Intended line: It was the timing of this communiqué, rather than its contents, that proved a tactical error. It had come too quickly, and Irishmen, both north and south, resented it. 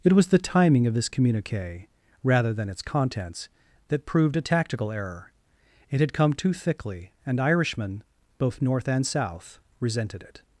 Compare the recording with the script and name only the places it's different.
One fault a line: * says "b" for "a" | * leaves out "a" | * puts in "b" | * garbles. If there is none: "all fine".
* says "thickly" for "quickly"